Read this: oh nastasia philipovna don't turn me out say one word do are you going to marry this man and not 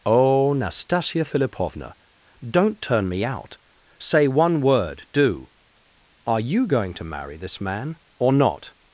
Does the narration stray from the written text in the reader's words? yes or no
yes